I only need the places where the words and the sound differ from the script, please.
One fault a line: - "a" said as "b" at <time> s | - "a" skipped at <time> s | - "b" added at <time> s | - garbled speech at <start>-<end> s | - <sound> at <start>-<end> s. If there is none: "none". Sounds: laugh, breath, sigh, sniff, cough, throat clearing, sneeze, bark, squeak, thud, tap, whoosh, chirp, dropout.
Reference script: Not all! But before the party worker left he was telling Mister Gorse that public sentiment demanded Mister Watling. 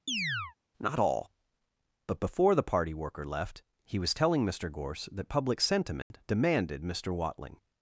- chirp at 0.1-0.6 s
- dropout at 6.0-6.1 s